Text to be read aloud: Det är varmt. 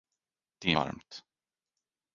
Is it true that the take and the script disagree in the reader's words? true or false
false